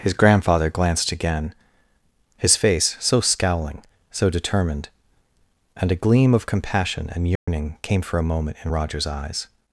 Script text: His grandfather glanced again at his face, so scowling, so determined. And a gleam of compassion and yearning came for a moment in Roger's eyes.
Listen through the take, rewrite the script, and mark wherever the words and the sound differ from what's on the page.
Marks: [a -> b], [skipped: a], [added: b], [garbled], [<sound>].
His grandfather glanced again [skipped: at] his face, so scowling, so determined. And a gleam of compassion and yearning [dropout] came for a moment in Roger's eyes.